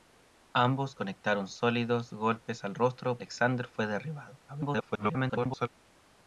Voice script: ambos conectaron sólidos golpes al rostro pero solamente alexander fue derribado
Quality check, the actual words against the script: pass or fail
fail